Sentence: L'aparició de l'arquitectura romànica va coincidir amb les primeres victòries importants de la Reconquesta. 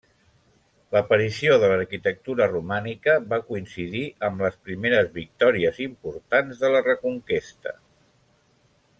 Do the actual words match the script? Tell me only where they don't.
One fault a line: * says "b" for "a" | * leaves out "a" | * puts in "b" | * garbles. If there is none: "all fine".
all fine